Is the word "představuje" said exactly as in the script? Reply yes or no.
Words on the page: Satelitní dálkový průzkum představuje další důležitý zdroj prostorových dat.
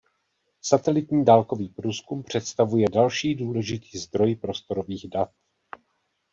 yes